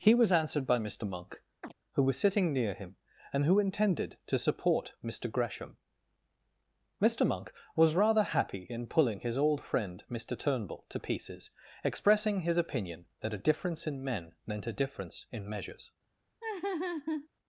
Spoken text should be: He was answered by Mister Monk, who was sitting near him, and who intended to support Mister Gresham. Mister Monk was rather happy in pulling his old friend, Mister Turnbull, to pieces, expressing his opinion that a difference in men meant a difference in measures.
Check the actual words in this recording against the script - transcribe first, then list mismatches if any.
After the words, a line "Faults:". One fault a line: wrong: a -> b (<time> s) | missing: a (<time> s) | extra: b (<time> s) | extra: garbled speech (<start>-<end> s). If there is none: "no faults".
He was answered by Mister Monk, who was sitting near him, and who intended to support Mister Gresham. Mister Monk was rather happy in pulling his old friend, Mister Turnbull, to pieces, expressing his opinion that a difference in men meant a difference in measures.
Faults:
no faults